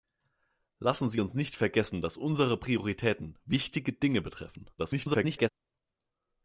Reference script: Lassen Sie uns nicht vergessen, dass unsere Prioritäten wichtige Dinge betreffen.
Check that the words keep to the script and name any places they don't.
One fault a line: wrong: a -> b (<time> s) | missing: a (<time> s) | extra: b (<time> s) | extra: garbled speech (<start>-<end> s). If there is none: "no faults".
extra: garbled speech (4.8-5.5 s)